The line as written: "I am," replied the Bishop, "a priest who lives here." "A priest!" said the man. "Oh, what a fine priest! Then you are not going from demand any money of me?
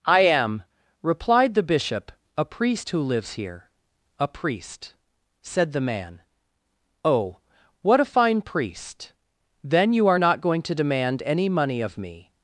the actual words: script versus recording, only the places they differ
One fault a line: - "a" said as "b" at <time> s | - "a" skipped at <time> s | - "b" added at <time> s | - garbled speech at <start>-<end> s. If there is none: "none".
- "from" said as "to" at 10.6 s